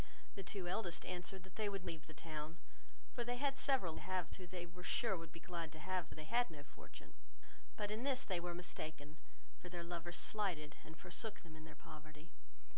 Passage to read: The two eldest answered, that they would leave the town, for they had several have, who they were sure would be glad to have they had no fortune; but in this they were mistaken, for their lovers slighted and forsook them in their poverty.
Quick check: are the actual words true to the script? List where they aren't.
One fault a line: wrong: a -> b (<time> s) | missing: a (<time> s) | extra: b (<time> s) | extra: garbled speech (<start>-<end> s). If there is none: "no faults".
no faults